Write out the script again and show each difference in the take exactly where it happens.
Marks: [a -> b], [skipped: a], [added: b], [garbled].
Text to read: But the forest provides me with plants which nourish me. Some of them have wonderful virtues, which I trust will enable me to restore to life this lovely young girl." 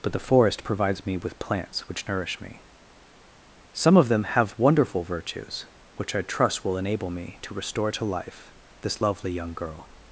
But the forest provides me with plants which nourish me. Some of them have wonderful virtues, which I trust will enable me to restore to life this lovely young girl."